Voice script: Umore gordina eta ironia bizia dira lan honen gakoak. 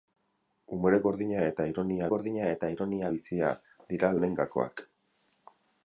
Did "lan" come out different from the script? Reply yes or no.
yes